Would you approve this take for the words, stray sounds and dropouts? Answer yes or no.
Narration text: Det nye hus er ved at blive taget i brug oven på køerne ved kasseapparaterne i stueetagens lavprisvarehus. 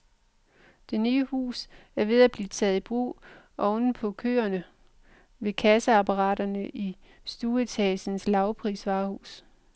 yes